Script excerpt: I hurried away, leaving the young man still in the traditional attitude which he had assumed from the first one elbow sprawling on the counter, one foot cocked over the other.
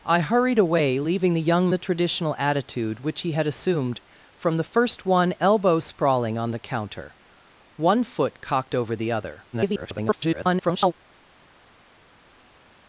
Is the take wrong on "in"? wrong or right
wrong